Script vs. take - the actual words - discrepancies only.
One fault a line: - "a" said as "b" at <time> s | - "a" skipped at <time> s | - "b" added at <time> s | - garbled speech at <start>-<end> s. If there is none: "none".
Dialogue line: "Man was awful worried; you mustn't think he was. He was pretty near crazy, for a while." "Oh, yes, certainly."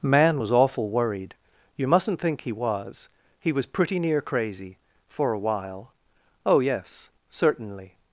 none